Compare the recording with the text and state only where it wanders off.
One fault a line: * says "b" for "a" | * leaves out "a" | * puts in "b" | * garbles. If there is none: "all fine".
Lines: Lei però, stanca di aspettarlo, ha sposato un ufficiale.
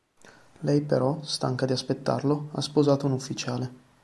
all fine